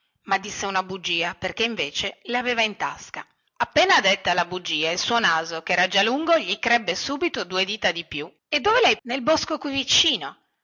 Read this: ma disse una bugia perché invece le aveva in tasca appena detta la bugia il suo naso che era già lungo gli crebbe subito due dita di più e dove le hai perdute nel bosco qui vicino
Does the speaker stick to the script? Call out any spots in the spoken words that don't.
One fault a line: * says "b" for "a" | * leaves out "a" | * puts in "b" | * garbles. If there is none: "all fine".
* leaves out "perdute"